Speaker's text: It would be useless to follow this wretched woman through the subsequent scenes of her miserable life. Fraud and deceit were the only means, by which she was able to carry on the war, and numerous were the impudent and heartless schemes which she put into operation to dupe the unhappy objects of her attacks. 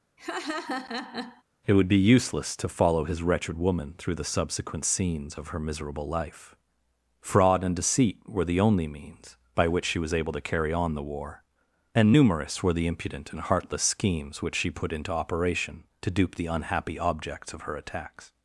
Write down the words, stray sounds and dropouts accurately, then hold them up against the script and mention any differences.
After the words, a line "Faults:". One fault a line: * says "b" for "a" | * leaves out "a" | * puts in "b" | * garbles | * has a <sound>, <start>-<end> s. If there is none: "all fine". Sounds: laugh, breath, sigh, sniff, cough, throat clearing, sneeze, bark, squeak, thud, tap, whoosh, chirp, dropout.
It would be useless to follow his wretched woman through the subsequent scenes of her miserable life. Fraud and deceit were the only means, by which she was able to carry on the war, and numerous were the impudent and heartless schemes which she put into operation to dupe the unhappy objects of her attacks.
Faults:
* has a laugh, 0.2-1.4 s
* says "his" for "this"